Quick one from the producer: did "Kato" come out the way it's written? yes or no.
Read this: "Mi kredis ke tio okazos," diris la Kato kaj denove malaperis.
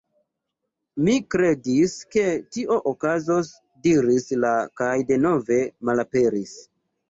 no